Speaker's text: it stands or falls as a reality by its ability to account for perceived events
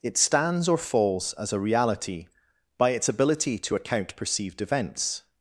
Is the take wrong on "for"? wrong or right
wrong